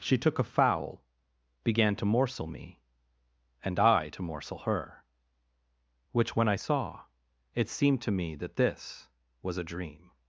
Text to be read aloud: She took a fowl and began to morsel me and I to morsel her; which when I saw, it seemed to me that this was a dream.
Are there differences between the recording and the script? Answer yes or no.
yes